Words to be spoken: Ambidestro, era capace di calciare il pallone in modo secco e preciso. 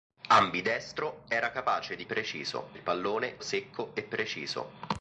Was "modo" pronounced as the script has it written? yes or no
no